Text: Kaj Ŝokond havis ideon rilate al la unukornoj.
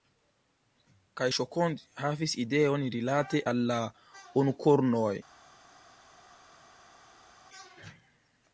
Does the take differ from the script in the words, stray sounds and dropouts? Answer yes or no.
no